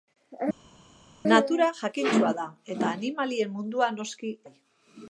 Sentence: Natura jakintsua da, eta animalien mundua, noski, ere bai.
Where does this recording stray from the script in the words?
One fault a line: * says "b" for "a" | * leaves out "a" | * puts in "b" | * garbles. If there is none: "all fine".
* leaves out "ere"